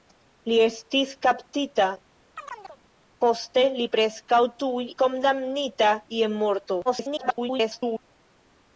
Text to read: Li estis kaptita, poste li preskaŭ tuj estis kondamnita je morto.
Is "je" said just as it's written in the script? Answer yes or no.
yes